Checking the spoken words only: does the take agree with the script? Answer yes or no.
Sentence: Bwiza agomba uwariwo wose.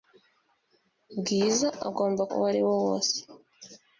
yes